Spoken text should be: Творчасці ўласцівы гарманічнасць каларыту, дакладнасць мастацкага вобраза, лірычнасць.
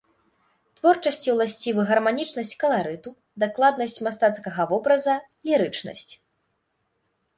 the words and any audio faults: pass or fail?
pass